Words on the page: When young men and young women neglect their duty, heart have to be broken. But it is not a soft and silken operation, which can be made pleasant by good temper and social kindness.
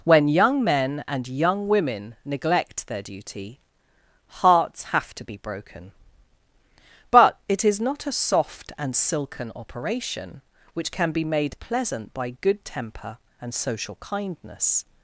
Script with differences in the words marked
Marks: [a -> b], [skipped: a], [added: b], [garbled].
When young men and young women neglect their duty, [heart -> hearts] have to be broken. But it is not a soft and silken operation, which can be made pleasant by good temper and social kindness.